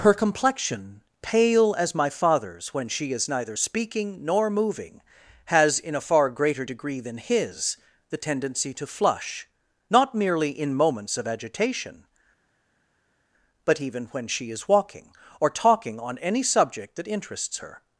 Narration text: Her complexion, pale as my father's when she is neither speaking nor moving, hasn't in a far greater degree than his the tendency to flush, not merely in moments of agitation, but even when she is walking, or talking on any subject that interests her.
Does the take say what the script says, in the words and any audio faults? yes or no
no